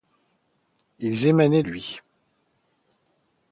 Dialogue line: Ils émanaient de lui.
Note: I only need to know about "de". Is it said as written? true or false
false